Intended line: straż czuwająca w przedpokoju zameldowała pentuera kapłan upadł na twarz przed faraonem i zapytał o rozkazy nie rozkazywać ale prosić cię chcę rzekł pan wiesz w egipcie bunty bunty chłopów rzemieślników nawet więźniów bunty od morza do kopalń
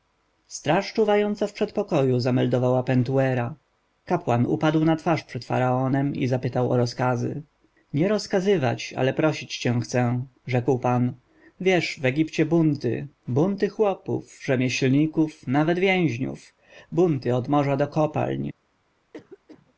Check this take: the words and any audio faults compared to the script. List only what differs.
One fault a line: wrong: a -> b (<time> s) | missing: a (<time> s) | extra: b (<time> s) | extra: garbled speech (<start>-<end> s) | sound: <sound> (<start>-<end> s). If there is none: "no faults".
sound: cough (19.1-19.7 s)